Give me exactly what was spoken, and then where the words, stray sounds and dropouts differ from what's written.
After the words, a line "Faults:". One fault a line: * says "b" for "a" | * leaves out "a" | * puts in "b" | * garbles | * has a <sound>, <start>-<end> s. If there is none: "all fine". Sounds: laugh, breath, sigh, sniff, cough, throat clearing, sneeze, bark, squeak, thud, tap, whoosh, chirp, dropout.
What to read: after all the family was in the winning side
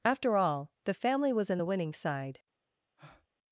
after all the family was in the winning side
Faults:
* has a breath, 3.0-3.3 s